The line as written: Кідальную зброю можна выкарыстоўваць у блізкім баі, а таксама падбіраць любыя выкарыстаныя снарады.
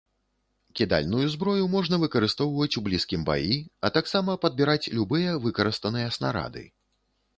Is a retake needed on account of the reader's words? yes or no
no